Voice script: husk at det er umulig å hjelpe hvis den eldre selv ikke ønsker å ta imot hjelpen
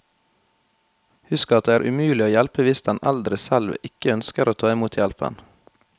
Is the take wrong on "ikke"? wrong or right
right